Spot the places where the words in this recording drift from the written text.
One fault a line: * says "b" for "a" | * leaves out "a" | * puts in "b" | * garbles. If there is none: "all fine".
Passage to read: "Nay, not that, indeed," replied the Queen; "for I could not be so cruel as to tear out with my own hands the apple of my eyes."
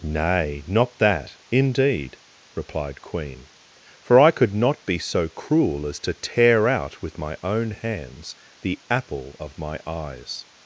* leaves out "the"